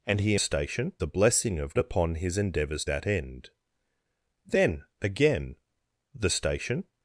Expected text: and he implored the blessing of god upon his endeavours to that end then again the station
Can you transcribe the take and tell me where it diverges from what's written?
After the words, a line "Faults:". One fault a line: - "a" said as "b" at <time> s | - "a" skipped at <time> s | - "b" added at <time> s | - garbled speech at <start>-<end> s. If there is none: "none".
and he station the blessing of upon his endeavours that end then again the station
Faults:
- "implored" said as "station" at 0.4 s
- "god" skipped at 1.8 s
- "to" skipped at 2.8 s